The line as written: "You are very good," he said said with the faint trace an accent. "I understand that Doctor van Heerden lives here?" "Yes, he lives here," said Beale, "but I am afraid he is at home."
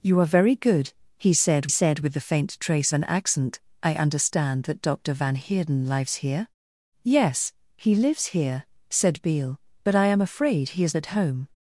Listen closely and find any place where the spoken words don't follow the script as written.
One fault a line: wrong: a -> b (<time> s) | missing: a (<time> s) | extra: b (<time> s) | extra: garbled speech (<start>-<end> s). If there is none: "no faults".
no faults